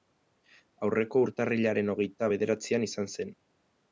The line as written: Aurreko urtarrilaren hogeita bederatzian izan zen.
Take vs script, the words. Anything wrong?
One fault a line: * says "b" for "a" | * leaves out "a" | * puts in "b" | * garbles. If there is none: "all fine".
all fine